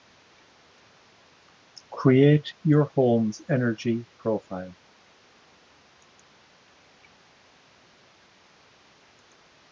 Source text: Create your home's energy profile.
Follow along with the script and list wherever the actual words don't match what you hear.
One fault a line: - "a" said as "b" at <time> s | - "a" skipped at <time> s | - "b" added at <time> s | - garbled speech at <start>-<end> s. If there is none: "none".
none